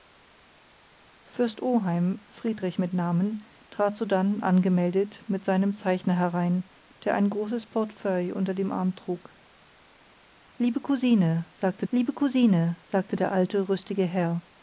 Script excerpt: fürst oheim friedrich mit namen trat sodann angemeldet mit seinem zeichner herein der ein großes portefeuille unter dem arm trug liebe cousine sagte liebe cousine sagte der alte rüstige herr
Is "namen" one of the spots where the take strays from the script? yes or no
no